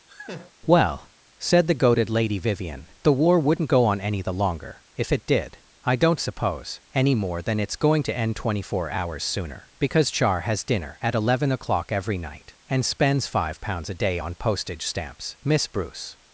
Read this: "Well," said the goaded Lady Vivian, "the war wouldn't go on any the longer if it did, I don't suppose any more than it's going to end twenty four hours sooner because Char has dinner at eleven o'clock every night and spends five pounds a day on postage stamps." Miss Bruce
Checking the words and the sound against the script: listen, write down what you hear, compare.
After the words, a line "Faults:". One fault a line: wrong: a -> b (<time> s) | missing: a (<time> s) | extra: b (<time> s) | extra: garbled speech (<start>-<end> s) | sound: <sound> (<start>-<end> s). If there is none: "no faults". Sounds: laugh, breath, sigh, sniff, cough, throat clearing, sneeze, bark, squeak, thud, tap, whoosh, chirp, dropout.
"Well," said the goaded Lady Vivian, "the war wouldn't go on any the longer if it did, I don't suppose any more than it's going to end twenty four hours sooner because Char has dinner at eleven o'clock every night and spends five pounds a day on postage stamps." Miss Bruce
Faults:
sound: laugh (0.1-0.5 s)